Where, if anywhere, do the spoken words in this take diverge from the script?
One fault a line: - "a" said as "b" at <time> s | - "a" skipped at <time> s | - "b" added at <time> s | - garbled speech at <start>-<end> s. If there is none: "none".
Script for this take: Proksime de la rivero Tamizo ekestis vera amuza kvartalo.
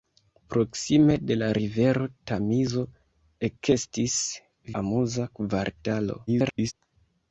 - "vera" skipped at 4.2 s
- garbled speech at 6.3-6.7 s